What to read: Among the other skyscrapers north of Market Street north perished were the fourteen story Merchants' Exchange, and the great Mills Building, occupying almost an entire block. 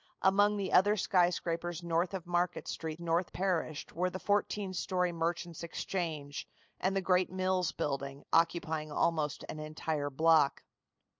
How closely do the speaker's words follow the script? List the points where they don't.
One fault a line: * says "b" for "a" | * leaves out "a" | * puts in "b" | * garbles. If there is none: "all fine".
all fine